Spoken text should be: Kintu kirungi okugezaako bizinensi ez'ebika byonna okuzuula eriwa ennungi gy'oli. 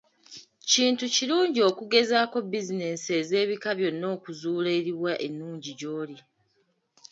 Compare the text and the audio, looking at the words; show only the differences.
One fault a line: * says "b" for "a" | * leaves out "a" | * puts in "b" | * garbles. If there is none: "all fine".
all fine